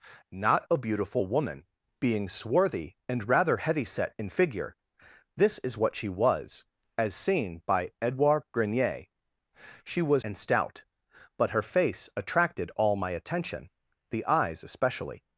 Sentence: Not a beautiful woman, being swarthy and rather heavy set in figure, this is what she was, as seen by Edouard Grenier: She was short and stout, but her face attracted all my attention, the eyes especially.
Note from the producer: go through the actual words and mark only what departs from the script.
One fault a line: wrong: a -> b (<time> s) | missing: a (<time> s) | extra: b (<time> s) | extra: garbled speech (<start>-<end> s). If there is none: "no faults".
missing: short (10.2 s)